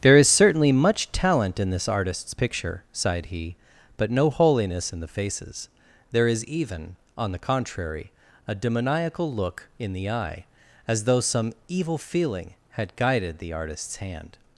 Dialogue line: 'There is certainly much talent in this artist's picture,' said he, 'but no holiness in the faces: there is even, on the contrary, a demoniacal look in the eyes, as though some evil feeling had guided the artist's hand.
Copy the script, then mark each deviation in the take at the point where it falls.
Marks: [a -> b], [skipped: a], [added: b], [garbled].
'There is certainly much talent in this artist's picture,' [said -> sighed] he, 'but no holiness in the faces: there is even, on the contrary, a demoniacal look in the [eyes, -> eye] as though some evil feeling had guided the artist's hand.